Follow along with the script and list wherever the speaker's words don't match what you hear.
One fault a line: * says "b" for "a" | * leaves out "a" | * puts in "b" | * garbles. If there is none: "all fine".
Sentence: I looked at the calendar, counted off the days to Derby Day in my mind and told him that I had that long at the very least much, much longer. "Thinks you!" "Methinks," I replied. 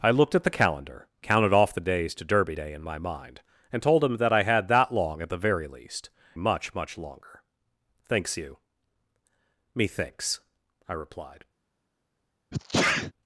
all fine